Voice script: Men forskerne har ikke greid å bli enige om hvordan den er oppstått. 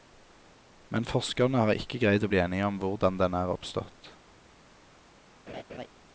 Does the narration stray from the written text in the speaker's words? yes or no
no